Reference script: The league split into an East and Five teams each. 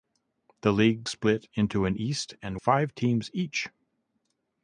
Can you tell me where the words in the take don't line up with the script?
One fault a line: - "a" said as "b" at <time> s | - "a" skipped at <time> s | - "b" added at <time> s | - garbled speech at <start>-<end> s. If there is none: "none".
none